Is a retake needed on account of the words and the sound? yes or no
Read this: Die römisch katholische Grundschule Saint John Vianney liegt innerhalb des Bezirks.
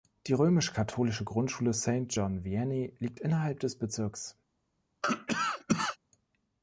yes